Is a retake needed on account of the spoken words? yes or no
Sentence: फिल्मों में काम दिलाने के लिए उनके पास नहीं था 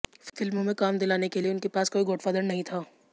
yes